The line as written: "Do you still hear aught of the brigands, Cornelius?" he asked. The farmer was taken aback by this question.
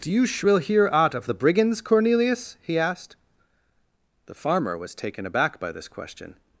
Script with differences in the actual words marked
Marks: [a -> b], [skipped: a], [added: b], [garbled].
"Do you [still -> shrill] hear aught of the brigands, Cornelius?" he asked. The farmer was taken aback by this question.